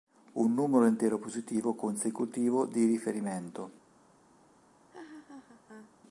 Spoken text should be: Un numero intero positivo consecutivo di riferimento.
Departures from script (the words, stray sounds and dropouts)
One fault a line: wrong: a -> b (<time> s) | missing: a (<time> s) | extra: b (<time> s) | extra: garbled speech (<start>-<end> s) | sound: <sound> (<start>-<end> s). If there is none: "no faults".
sound: laugh (4.9-5.9 s)